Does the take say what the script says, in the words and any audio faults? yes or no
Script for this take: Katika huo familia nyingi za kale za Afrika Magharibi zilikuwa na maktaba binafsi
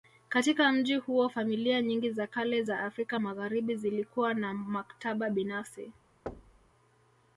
no